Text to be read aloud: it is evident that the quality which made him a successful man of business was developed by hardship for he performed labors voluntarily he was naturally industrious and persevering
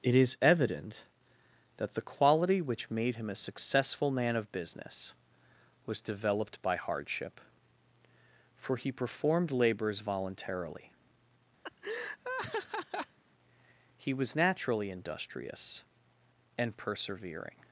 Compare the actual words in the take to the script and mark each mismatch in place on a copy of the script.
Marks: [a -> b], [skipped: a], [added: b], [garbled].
it is evident that the quality which made him a successful man of business was developed by hardship for he performed labors voluntarily he was naturally industrious and persevering